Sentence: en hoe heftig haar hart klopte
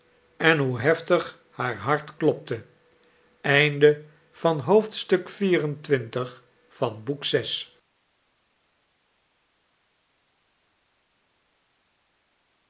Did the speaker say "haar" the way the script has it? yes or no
yes